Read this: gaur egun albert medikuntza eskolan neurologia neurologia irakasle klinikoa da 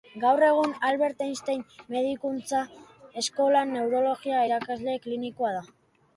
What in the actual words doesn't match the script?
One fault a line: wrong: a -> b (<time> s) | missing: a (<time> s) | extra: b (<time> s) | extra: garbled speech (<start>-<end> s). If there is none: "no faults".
extra: einstein (1.3 s)
missing: neurologia (4.4 s)